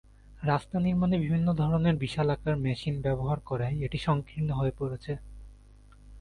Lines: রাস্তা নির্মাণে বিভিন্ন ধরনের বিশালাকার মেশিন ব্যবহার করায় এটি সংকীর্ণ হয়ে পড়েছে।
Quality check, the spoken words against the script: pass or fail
pass